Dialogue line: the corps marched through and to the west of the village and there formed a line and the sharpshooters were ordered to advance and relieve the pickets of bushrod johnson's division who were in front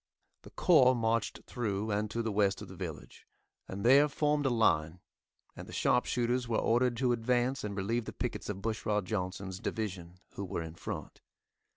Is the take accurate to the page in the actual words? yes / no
yes